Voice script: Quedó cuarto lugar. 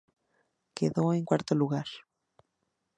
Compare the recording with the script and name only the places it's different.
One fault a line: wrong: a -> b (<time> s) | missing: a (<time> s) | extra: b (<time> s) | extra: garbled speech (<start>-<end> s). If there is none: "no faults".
extra: en (1.1 s)